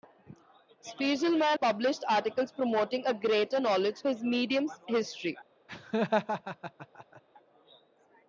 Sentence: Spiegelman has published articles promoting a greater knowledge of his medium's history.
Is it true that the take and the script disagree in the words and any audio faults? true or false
true